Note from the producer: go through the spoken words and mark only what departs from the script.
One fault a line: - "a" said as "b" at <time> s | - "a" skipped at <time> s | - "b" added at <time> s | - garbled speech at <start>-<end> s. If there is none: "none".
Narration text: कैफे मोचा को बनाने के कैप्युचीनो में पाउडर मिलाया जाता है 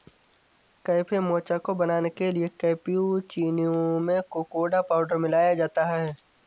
- "लिए" added at 2.3 s
- "कोकोडा" added at 4.3 s